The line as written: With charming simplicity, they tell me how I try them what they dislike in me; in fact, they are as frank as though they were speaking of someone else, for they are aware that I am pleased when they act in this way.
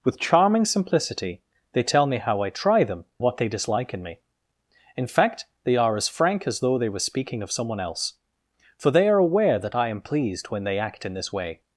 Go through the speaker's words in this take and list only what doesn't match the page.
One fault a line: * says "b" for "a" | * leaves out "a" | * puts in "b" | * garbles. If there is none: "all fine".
all fine